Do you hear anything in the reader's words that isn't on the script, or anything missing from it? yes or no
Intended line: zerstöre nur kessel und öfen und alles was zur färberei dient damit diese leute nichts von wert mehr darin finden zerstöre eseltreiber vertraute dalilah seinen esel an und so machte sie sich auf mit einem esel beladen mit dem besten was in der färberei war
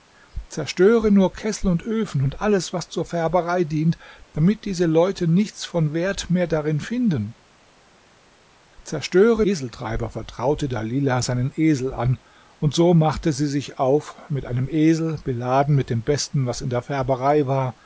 no